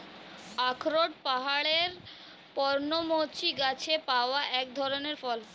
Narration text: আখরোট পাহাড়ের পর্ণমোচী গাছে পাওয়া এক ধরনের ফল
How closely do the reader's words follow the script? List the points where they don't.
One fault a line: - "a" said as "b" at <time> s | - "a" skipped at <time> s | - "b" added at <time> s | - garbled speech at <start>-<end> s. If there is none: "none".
none